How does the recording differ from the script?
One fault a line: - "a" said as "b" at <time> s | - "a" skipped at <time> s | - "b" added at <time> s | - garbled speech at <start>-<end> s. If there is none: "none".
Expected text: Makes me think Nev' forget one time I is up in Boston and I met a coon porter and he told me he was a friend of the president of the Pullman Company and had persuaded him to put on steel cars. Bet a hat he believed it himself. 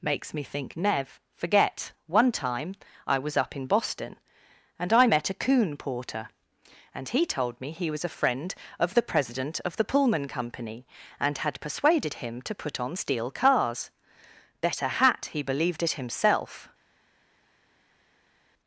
- "is" said as "was" at 3.2 s